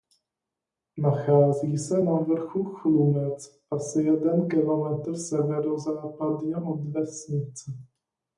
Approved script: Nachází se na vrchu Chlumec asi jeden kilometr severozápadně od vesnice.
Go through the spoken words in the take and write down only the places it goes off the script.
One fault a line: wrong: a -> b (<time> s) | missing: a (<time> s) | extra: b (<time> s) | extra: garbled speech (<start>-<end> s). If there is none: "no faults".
no faults